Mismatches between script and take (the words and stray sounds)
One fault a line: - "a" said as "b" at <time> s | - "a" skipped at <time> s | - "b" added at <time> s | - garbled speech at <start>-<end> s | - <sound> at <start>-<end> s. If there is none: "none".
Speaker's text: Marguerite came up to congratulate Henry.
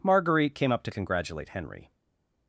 none